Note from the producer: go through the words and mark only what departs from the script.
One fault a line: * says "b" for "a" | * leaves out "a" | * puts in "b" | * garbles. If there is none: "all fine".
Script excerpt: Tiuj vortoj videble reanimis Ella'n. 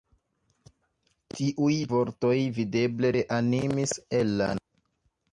all fine